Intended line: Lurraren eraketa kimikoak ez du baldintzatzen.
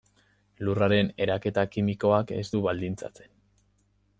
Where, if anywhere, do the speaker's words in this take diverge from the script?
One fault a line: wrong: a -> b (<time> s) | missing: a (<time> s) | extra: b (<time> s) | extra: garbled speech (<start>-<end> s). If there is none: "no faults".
no faults